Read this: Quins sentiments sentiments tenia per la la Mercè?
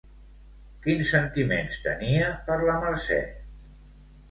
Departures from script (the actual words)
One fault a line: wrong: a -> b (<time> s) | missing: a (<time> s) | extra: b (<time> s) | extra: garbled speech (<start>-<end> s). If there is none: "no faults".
missing: sentiments (1.8 s)
missing: la (2.8 s)